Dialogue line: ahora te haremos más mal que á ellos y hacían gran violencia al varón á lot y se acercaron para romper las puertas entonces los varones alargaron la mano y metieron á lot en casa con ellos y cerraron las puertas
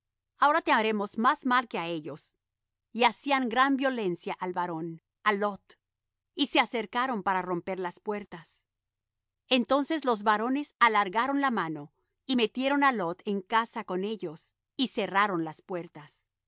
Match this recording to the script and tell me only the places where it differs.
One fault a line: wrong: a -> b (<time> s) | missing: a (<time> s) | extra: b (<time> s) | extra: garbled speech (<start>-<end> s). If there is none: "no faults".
no faults